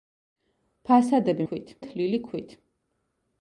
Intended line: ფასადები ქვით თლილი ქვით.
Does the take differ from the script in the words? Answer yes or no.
no